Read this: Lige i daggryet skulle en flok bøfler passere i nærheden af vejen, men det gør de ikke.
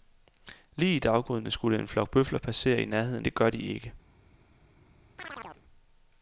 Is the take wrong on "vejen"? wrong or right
wrong